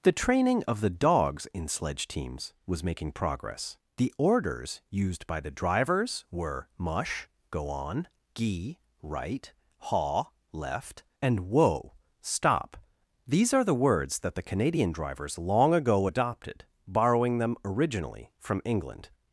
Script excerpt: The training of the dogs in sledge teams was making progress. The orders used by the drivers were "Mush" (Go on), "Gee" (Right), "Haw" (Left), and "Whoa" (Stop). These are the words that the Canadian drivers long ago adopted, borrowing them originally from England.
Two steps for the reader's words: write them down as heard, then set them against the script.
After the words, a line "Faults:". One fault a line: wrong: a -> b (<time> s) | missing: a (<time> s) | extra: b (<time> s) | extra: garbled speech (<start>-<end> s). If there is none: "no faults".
The training of the dogs in sledge teams was making progress. The orders used by the drivers were "Mush" (Go on), "Gee" (Right), "Haw" (Left), and "Whoa" (Stop). These are the words that the Canadian drivers long ago adopted, borrowing them originally from England.
Faults:
no faults